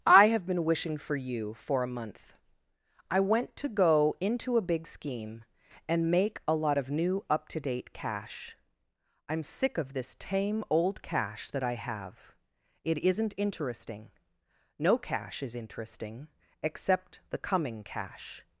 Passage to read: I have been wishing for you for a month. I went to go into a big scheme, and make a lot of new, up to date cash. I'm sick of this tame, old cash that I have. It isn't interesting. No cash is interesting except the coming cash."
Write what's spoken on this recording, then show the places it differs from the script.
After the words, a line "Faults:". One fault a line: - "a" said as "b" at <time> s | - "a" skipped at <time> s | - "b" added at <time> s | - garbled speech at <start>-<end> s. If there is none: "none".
I have been wishing for you for a month. I went to go into a big scheme, and make a lot of new, up to date cash. I'm sick of this tame, old cash that I have. It isn't interesting. No cash is interesting except the coming cash."
Faults:
none